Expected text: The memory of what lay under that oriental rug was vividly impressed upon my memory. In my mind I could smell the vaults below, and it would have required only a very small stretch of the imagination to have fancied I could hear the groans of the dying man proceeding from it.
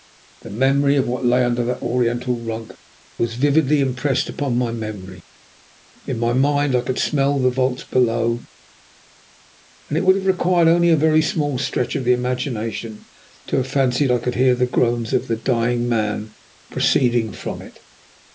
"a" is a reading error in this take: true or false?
false